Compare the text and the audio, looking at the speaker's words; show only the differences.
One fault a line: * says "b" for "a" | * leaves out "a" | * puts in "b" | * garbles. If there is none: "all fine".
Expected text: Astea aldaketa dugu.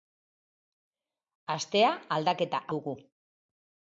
all fine